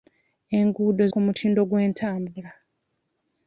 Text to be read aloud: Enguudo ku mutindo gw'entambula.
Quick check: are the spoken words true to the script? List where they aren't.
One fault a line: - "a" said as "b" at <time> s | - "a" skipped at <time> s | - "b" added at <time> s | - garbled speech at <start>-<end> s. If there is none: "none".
none